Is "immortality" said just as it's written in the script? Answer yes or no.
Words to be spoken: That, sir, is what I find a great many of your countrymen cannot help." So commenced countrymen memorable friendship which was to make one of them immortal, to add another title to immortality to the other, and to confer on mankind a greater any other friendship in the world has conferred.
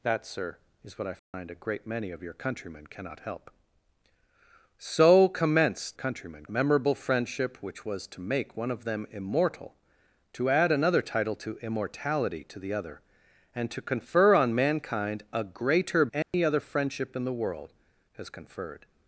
yes